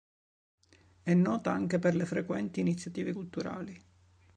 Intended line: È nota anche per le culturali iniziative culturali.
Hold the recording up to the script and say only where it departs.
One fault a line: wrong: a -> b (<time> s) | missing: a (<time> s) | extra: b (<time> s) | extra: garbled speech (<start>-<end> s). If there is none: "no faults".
wrong: culturali -> frequenti (2.1 s)